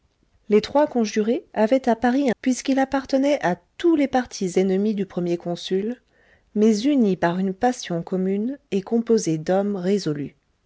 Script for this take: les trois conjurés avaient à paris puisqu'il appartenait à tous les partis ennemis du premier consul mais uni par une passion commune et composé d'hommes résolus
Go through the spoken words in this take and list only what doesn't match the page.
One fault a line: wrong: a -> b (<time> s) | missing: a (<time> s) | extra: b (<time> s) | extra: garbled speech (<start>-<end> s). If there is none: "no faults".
no faults